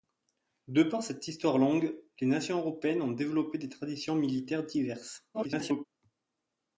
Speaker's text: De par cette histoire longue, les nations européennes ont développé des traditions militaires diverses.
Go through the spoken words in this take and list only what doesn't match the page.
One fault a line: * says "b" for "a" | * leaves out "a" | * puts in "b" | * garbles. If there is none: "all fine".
* garbles